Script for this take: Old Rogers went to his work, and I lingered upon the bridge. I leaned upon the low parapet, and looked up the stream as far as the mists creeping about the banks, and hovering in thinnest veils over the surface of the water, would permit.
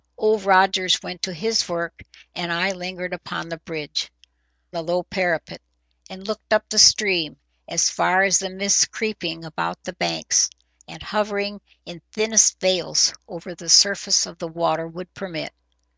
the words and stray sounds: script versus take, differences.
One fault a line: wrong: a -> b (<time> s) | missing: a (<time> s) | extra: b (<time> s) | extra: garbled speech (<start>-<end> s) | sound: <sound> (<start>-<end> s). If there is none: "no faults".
missing: I leaned upon (4.1 s)